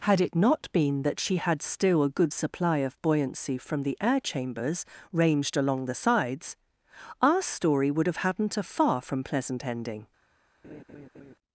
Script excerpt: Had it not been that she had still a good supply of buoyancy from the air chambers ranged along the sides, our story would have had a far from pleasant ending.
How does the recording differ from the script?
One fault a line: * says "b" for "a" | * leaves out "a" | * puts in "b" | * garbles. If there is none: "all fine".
* says "hadn't" for "had"